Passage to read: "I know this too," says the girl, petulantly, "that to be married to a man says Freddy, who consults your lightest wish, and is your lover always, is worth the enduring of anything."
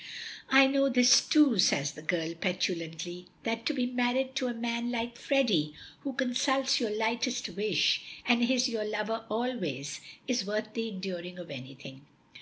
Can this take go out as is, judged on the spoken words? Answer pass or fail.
fail